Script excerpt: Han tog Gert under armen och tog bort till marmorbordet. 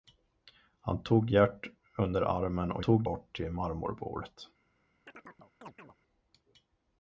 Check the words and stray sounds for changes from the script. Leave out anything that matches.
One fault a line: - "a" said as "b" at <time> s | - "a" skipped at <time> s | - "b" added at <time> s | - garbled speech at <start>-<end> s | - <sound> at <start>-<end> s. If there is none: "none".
- chirp at 5.1-6.0 s